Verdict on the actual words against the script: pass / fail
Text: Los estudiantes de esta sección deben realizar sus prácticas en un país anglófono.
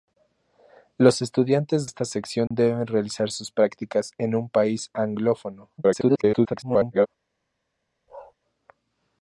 fail